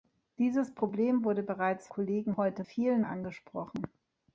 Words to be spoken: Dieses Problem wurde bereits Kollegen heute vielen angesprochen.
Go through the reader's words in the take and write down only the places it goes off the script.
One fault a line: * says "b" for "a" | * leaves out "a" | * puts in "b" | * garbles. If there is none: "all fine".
all fine